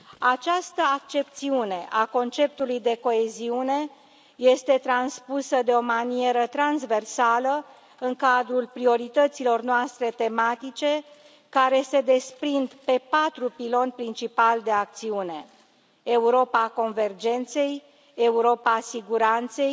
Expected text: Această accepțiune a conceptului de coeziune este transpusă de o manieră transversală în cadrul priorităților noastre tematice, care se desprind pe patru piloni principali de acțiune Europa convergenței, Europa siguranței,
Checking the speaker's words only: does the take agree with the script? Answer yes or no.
yes